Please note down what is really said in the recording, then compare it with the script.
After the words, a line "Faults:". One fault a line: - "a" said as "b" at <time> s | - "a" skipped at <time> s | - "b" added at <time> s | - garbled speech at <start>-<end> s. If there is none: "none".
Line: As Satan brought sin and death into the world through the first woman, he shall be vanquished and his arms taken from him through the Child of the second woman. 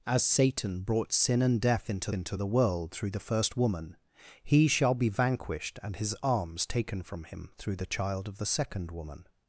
As Satan brought sin and death into into the world through the first woman, he shall be vanquished and his arms taken from him through the Child of the second woman.
Faults:
- "into" added at 2.1 s